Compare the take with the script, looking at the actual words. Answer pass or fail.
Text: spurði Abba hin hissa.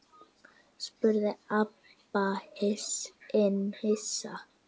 pass